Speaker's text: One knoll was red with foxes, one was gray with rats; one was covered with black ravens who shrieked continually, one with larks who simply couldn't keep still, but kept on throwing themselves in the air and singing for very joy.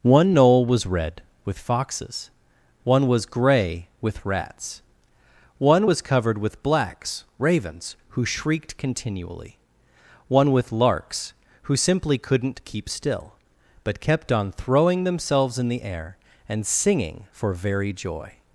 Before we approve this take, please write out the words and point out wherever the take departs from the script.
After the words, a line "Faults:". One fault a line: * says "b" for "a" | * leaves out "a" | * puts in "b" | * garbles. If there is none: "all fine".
One knoll was red with foxes, one was gray with rats; one was covered with blacks ravens who shrieked continually, one with larks who simply couldn't keep still, but kept on throwing themselves in the air and singing for very joy.
Faults:
* says "blacks" for "black"